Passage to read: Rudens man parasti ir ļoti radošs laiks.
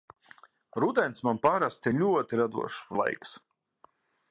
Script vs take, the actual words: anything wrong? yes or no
no